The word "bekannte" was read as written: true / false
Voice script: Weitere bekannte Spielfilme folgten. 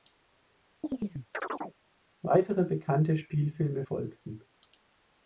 true